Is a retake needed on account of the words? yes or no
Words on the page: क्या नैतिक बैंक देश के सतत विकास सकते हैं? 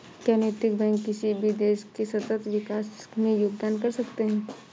yes